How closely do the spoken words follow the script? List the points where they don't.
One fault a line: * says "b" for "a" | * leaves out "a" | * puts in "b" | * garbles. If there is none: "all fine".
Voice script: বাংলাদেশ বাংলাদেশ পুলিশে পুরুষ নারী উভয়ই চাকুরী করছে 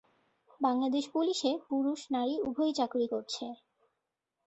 * leaves out "বাংলাদেশ"